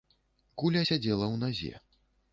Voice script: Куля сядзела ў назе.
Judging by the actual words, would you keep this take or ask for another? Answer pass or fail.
pass